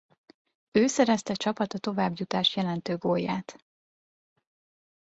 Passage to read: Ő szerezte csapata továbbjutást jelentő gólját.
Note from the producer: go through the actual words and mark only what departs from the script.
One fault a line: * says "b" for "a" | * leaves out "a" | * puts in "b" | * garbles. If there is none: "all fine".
all fine